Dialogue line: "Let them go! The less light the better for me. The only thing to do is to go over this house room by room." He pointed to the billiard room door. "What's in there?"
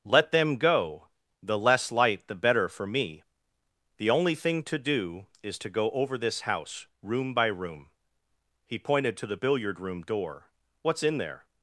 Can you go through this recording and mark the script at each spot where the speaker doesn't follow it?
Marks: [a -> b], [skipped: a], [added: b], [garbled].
"Let them go! The less light the better for me. The only thing to do is to go over this house room by room." He pointed to the billiard room door. "What's in there?"